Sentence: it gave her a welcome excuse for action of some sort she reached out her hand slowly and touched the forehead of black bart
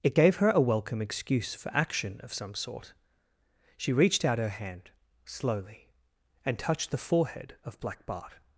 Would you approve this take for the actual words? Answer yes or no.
yes